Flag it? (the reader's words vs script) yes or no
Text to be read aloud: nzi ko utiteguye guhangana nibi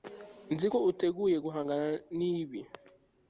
no